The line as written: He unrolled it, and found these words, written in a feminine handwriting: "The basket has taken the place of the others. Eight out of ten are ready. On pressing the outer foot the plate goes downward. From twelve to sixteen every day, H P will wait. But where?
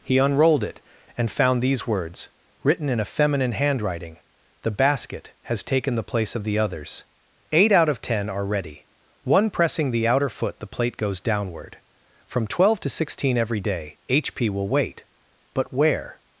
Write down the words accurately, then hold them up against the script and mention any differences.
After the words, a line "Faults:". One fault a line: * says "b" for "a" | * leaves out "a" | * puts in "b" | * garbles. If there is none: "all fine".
He unrolled it, and found these words, written in a feminine handwriting: "The basket has taken the place of the others. Eight out of ten are ready. One pressing the outer foot the plate goes downward. From twelve to sixteen every day, H P will wait. But where?
Faults:
* says "One" for "On"